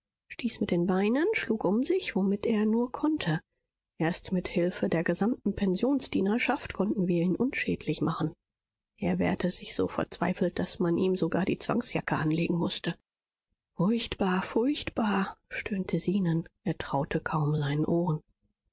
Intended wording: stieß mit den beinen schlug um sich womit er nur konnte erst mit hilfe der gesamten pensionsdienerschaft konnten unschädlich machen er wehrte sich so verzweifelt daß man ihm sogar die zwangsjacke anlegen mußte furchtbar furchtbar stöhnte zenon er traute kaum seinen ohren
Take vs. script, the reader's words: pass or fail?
fail